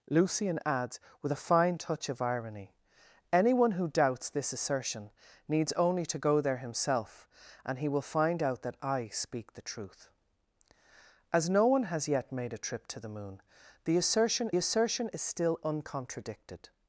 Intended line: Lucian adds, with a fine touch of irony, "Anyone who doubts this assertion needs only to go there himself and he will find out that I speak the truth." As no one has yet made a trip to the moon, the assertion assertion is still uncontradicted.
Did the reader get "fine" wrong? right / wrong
right